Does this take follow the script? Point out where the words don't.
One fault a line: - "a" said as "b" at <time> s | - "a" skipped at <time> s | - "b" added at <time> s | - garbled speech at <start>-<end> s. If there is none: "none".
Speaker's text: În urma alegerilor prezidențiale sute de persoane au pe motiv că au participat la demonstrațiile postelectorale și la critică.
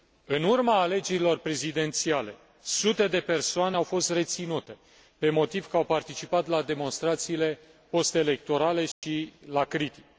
- "fost reținute" added at 3.8 s